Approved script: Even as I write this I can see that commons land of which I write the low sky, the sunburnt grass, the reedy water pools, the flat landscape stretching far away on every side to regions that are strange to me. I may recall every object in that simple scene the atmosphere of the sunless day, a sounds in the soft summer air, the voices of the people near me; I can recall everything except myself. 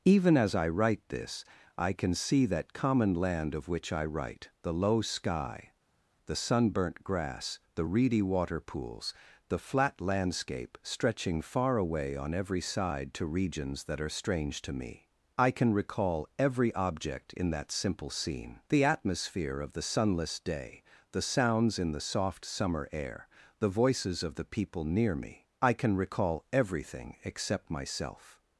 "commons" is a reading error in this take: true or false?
true